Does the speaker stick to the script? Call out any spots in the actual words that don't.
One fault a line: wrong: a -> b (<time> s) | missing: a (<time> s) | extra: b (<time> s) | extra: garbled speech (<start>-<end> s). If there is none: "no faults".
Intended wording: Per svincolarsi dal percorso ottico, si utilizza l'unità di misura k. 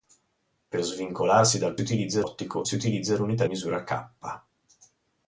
wrong: percorso -> utilizza (1.8 s)
missing: di (3.5 s)